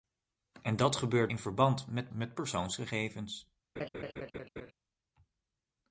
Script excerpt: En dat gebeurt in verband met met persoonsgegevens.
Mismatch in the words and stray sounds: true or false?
true